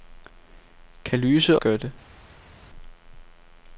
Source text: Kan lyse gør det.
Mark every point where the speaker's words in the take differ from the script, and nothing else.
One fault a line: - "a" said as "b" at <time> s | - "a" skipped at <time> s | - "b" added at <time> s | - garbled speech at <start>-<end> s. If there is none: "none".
none